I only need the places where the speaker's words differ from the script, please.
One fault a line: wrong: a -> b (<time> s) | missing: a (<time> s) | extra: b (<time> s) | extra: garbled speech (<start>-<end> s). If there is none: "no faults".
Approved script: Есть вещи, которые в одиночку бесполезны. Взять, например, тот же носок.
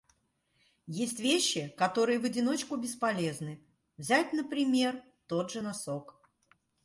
no faults